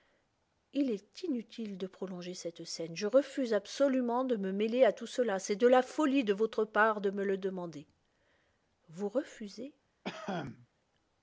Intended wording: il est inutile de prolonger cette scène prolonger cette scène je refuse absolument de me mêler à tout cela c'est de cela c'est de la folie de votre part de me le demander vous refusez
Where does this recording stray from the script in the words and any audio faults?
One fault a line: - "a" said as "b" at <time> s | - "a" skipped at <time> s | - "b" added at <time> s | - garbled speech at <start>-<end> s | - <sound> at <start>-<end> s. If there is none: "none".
- "prolonger cette scène" skipped at 3.0 s
- "cela c'est de" skipped at 5.7 s
- cough at 10.0-10.7 s